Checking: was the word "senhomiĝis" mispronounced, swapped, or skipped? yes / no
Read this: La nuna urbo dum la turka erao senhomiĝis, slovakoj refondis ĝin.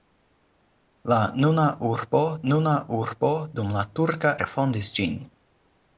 yes